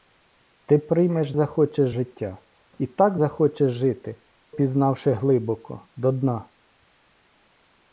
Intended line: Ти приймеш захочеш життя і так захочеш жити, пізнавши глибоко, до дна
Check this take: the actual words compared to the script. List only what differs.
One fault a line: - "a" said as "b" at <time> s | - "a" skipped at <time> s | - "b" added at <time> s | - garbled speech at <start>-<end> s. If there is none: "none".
none